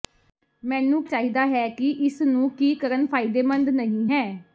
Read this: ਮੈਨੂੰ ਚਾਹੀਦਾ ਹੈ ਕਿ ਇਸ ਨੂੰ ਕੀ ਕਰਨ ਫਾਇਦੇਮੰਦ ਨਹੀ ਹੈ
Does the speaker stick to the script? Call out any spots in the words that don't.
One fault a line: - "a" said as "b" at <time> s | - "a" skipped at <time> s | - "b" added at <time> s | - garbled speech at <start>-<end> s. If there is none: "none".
none